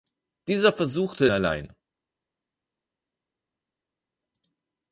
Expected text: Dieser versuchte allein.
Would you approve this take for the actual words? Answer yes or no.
yes